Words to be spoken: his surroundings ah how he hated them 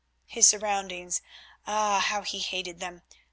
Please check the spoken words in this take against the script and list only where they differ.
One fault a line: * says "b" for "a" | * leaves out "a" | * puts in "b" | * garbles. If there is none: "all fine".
all fine